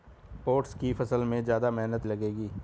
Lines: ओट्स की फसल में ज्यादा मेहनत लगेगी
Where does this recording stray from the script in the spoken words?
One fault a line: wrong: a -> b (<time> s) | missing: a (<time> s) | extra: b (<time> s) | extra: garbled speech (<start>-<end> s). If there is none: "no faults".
no faults